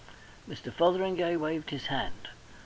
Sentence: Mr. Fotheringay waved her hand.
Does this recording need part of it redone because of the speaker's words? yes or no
yes